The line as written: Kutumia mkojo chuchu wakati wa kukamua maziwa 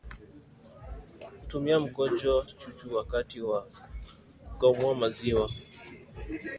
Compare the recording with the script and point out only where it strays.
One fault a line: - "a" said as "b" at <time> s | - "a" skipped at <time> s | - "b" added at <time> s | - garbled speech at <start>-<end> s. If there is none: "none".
none